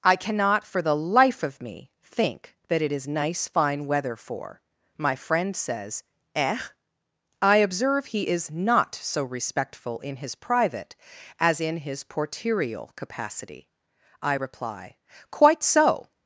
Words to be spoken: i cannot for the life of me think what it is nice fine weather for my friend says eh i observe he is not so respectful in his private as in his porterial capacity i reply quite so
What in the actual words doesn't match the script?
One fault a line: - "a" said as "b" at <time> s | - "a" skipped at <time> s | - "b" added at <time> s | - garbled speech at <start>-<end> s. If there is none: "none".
- "what" said as "that" at 2.7 s